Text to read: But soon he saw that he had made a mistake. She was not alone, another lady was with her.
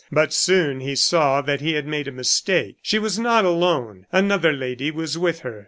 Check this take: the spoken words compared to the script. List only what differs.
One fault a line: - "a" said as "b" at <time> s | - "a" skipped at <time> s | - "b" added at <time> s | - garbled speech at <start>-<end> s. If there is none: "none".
none